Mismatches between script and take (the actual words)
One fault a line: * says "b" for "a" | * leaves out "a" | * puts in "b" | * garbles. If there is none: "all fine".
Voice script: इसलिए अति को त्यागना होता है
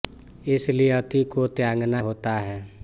all fine